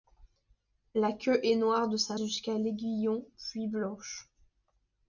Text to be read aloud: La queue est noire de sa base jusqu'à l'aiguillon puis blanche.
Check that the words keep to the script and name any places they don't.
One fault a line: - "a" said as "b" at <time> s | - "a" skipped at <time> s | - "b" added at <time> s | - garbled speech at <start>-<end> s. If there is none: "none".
- "base" skipped at 2.2 s